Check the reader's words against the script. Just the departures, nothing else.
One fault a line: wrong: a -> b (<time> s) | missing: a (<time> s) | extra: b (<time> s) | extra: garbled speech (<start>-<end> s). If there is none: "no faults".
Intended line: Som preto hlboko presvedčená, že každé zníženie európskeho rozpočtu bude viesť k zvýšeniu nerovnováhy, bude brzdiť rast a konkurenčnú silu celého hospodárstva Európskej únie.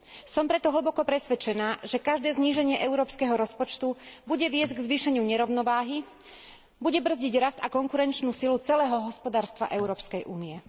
no faults